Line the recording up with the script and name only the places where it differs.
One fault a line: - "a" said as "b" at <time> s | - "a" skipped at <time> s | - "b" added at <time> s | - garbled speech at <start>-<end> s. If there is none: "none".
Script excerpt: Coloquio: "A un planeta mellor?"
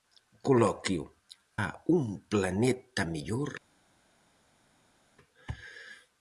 none